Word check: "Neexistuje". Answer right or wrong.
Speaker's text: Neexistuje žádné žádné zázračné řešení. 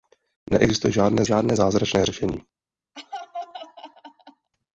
right